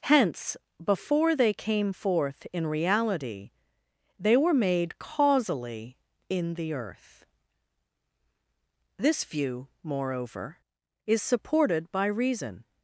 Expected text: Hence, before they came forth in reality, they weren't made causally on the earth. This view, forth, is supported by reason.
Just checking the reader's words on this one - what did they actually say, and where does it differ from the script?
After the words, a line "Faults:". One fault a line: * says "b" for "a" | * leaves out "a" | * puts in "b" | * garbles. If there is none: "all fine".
Hence, before they came forth in reality, they were made causally in the earth. This view, moreover, is supported by reason.
Faults:
* says "were" for "weren't"
* says "in" for "on"
* says "moreover" for "forth"